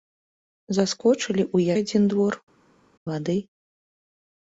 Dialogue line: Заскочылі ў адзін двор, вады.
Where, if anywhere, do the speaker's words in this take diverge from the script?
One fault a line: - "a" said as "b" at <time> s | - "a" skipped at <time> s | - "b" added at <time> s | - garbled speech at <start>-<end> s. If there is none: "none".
none